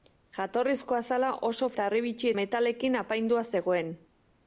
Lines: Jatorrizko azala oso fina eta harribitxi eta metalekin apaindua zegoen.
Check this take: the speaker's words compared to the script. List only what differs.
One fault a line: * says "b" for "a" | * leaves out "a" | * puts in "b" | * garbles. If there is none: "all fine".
* leaves out "fina"
* leaves out "eta"